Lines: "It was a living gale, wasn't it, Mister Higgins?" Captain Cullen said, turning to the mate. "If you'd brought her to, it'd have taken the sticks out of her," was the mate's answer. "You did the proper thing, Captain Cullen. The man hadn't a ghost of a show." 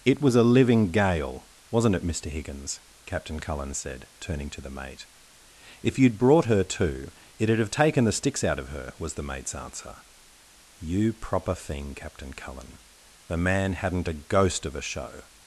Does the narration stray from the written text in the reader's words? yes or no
yes